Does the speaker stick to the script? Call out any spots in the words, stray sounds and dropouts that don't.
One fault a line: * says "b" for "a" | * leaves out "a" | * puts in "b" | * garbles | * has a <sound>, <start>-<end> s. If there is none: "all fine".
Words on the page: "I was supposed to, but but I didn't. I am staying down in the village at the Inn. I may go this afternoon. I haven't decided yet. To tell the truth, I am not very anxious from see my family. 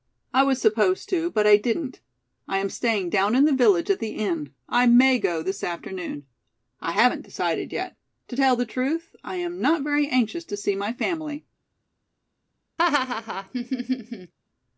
* leaves out "but"
* says "to" for "from"
* has a laugh, 12.8-14.3 s